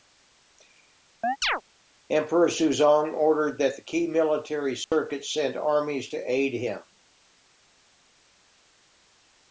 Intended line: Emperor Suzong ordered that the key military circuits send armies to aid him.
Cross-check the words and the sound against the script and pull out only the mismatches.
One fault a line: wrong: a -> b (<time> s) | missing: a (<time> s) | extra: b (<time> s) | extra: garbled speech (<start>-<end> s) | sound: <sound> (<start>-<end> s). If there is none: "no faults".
sound: chirp (1.2-1.6 s)
sound: dropout (4.8-4.9 s)